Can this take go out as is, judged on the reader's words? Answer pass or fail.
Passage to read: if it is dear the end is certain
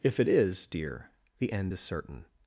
pass